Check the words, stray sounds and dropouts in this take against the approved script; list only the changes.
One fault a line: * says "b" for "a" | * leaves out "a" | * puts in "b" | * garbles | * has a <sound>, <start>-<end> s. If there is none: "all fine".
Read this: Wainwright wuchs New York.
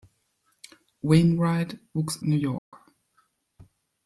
* has a dropout, 2.6-2.7 s